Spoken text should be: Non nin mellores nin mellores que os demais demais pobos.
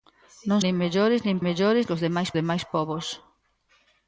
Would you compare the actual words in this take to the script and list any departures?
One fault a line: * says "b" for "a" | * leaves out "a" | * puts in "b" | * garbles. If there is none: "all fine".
all fine